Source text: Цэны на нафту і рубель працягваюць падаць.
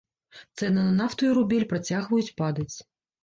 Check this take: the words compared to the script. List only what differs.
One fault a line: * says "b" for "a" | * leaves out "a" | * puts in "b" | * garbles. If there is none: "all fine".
all fine